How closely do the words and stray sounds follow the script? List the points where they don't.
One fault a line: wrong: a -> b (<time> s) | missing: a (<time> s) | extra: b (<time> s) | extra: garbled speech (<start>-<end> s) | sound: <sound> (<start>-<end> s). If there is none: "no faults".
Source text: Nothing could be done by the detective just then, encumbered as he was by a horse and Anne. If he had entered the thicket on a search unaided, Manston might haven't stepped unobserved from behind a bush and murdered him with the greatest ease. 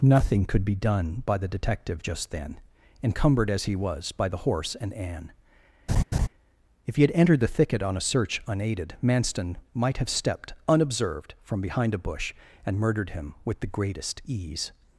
wrong: a -> the (4.3 s)
sound: laugh (5.9-6.3 s)
wrong: haven't -> have (10.0 s)